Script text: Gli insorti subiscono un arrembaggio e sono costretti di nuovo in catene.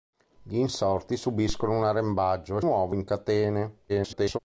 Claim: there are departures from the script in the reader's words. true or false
true